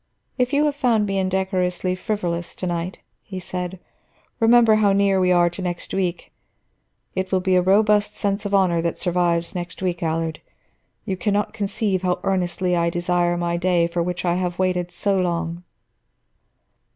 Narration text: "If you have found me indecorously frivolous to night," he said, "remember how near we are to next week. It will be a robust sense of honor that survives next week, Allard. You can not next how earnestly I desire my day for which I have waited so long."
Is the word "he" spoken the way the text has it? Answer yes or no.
yes